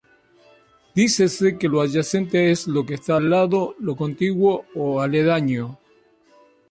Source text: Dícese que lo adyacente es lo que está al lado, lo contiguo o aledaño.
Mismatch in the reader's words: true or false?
false